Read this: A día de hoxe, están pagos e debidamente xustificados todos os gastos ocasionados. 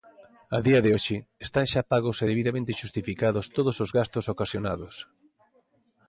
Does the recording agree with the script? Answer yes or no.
no